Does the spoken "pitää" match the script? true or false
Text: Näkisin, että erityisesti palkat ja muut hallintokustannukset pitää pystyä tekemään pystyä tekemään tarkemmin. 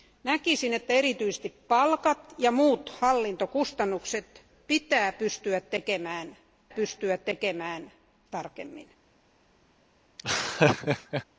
true